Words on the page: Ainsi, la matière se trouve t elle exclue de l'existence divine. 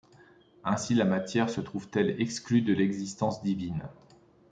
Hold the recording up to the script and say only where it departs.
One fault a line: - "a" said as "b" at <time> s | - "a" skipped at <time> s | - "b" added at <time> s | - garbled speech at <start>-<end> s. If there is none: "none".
none